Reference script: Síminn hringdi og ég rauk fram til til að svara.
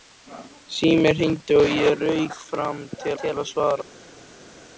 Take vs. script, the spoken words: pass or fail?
pass